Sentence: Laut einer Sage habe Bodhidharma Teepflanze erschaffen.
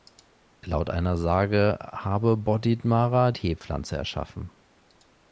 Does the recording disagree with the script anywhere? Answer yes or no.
no